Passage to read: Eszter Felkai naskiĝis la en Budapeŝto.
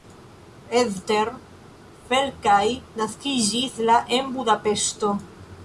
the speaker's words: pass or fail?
pass